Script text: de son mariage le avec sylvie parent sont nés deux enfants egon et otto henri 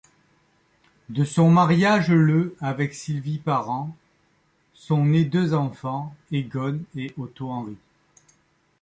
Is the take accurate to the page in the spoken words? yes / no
yes